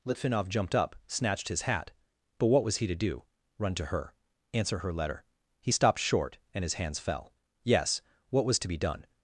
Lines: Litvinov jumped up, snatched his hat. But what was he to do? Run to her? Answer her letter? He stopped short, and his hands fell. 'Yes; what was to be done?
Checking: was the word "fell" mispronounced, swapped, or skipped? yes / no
no